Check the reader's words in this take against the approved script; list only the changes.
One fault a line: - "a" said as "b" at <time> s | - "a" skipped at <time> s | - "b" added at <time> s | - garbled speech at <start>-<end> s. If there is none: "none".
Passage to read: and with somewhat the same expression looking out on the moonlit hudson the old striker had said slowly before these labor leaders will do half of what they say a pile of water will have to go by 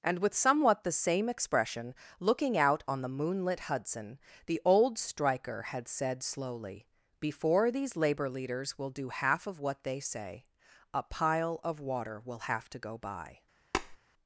none